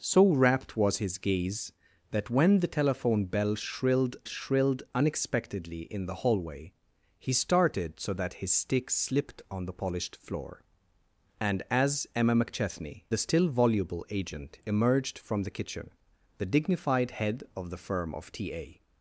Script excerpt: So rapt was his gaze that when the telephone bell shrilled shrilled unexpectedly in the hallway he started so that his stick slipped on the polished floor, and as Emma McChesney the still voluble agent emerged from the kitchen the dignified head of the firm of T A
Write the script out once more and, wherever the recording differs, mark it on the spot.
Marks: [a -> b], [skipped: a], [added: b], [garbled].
So rapt was his gaze that when the telephone bell shrilled shrilled unexpectedly in the hallway he started so that his stick slipped on the polished floor, and as Emma McChesney the still voluble agent emerged from the kitchen the dignified head of the firm of T A